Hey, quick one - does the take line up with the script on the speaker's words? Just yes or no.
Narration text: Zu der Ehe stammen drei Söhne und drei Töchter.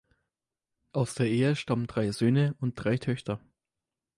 no